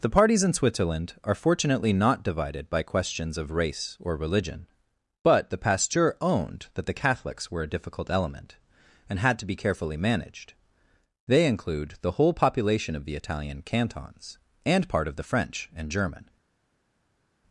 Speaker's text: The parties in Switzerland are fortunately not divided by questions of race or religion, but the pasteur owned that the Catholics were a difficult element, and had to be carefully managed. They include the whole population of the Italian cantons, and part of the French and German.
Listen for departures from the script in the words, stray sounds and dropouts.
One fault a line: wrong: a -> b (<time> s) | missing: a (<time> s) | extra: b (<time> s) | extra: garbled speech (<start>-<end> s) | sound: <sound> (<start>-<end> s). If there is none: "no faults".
no faults